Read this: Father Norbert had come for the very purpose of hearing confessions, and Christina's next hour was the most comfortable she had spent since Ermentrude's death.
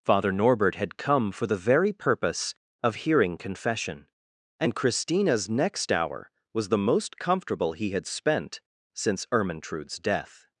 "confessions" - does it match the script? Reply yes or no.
no